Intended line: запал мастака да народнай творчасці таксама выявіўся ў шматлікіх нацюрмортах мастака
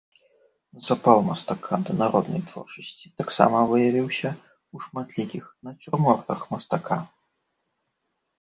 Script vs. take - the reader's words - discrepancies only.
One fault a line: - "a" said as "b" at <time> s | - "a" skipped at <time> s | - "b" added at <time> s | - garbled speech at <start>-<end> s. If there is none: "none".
none